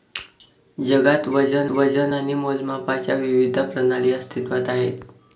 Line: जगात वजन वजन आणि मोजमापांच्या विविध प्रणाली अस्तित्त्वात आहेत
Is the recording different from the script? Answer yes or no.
no